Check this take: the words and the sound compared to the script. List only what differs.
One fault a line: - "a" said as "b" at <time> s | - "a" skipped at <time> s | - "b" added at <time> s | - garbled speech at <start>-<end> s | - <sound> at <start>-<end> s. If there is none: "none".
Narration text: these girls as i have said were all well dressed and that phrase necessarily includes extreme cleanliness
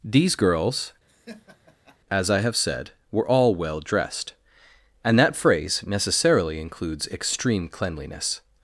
- laugh at 1.1-2.0 s